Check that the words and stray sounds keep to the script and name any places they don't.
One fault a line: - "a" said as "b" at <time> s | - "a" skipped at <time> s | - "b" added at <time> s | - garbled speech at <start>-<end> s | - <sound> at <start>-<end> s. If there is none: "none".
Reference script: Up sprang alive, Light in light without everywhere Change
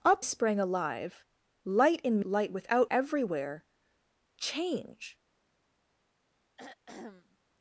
- throat clearing at 6.6-7.4 s